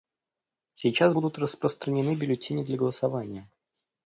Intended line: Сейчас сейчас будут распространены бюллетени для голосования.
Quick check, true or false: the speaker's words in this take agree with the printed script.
false